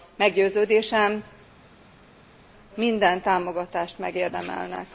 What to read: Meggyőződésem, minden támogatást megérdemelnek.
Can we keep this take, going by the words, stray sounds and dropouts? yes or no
yes